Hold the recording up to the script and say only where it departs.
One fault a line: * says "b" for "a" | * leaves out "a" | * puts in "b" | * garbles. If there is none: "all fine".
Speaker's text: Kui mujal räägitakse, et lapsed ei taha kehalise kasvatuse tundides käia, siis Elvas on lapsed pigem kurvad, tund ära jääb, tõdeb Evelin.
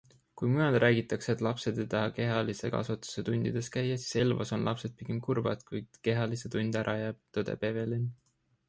* puts in "kui kehalise"